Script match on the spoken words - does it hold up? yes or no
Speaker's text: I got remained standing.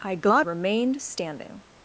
yes